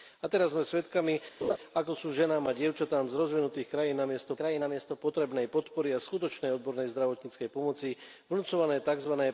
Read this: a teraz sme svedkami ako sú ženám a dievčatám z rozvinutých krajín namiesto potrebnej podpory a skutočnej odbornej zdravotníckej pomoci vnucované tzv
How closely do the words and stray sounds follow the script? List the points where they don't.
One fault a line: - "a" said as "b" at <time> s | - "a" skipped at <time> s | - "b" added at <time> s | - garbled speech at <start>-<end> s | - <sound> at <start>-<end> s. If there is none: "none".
- laugh at 1.4-1.6 s
- "krajín namiesto" added at 4.4 s